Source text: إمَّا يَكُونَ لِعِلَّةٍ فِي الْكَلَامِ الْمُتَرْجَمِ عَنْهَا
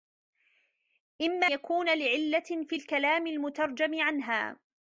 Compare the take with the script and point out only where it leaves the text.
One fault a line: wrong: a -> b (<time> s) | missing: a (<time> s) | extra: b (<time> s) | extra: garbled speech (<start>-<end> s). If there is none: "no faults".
no faults